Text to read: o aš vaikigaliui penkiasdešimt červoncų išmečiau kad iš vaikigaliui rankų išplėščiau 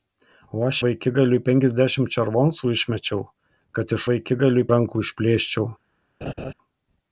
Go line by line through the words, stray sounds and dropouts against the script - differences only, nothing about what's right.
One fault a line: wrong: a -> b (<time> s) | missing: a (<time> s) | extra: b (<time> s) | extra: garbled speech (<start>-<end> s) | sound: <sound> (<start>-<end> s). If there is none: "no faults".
sound: laugh (6.2-6.5 s)